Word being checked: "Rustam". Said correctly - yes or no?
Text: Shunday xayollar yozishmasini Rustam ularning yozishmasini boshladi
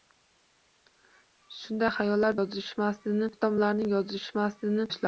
yes